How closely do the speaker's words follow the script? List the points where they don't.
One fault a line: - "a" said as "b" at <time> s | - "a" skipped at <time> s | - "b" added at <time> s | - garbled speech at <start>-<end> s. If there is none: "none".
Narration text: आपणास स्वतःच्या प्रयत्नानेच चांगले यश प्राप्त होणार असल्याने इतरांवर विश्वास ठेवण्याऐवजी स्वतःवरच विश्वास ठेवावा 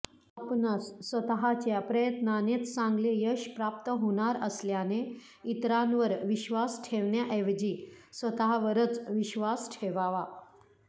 none